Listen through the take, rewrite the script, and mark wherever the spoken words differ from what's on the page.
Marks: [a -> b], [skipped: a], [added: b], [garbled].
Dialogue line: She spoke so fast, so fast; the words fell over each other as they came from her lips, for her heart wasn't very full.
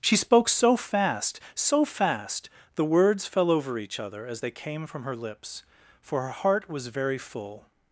She spoke so fast, so fast; the words fell over each other as they came from her lips, for her heart [wasn't -> was] very full.